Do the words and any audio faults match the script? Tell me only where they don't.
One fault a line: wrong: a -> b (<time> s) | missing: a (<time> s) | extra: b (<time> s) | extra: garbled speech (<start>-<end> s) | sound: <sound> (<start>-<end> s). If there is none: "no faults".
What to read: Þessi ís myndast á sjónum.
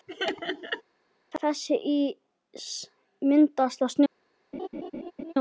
sound: laugh (0.1-0.8 s)
sound: laugh (4.5-5.3 s)